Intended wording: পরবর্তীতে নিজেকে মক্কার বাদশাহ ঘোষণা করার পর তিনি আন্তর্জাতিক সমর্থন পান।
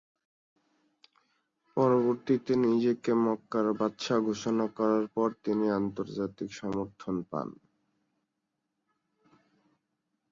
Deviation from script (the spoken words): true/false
false